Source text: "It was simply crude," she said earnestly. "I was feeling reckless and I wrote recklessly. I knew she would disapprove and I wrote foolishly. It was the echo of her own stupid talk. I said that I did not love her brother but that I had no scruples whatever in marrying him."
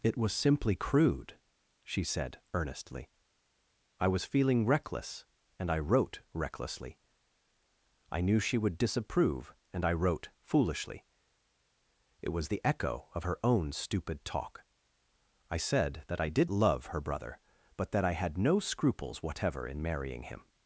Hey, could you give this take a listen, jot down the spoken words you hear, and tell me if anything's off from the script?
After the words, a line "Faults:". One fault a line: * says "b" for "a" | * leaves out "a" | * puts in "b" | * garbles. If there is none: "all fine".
"It was simply crude," she said earnestly. "I was feeling reckless and I wrote recklessly. I knew she would disapprove and I wrote foolishly. It was the echo of her own stupid talk. I said that I did love her brother but that I had no scruples whatever in marrying him."
Faults:
* leaves out "not"